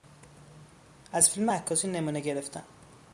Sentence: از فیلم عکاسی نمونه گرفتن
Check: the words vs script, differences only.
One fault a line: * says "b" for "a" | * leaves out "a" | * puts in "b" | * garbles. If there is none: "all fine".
all fine